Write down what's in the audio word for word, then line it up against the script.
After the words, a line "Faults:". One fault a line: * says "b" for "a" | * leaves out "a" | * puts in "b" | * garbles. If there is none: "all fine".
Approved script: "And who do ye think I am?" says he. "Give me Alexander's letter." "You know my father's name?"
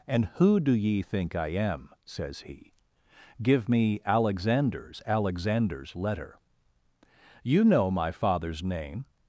"And who do ye think I am?" says he. "Give me Alexander's Alexander's letter." "You know my father's name?"
Faults:
* puts in "Alexander's"